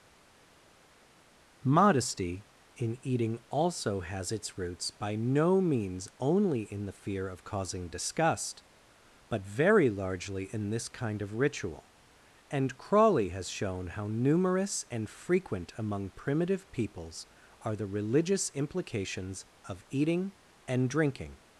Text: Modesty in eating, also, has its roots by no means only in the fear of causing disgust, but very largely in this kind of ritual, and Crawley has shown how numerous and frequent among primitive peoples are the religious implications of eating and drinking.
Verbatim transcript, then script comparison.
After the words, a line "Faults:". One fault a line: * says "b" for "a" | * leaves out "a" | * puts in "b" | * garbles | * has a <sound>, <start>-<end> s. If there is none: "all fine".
Modesty in eating, also, has its roots by no means only in the fear of causing disgust, but very largely in this kind of ritual, and Crawley has shown how numerous and frequent among primitive peoples are the religious implications of eating and drinking.
Faults:
all fine